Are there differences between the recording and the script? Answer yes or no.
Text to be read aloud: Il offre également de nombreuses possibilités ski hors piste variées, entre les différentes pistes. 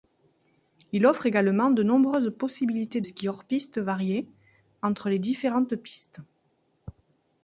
no